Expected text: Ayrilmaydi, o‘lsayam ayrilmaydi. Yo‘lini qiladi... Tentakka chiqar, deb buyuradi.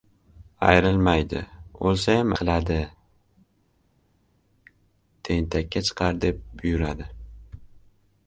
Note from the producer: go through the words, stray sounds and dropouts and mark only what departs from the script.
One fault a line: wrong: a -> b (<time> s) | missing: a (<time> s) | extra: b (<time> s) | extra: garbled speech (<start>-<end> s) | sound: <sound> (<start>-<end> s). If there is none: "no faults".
missing: ayrilmaydi Yo‘lini (2.3 s)